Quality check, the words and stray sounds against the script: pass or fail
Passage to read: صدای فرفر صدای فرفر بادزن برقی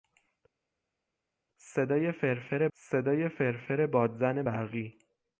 pass